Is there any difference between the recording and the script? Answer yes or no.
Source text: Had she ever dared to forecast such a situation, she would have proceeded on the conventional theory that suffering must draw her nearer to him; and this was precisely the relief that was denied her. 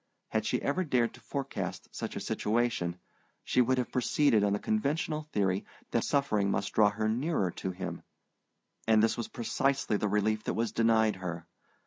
no